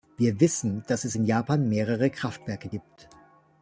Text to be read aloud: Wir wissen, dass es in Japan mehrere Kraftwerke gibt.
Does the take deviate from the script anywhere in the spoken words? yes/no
no